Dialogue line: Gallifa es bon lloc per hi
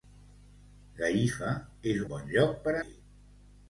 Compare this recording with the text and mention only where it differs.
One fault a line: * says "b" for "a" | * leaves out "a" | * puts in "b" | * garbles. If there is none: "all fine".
all fine